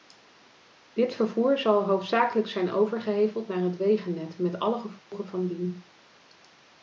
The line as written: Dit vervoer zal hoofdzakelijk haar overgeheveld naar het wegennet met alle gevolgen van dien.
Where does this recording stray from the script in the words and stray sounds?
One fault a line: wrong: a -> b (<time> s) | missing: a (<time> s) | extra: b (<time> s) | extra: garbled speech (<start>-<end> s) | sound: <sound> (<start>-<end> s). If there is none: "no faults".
wrong: haar -> zijn (2.5 s)
sound: dropout (5.0-5.1 s)